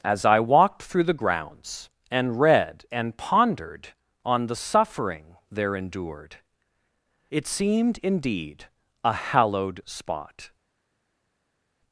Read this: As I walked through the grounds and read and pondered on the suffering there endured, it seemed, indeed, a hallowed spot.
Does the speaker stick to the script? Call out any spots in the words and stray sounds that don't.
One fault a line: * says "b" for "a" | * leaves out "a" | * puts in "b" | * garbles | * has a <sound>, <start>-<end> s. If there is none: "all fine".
all fine